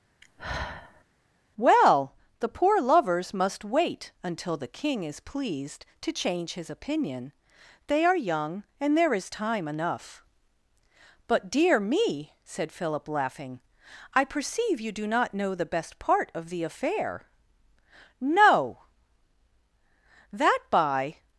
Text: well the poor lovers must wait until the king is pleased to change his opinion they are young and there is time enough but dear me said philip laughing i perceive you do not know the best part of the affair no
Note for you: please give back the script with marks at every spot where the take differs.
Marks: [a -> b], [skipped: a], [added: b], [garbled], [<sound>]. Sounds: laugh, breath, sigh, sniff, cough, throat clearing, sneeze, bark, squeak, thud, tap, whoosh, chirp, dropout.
[sigh] well the poor lovers must wait until the king is pleased to change his opinion they are young and there is time enough but dear me said philip laughing i perceive you do not know the best part of the affair no [added: that by]